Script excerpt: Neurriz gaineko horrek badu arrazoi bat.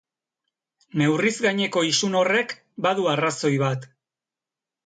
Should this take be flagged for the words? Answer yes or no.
yes